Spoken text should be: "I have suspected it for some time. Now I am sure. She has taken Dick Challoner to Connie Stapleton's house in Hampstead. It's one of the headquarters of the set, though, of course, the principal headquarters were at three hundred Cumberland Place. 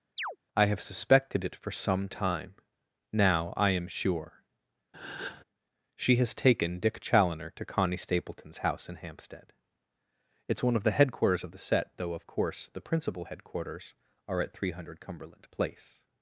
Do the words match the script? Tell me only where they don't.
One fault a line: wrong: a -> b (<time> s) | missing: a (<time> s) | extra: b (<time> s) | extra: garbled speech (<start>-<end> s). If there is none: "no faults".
wrong: were -> are (14.3 s)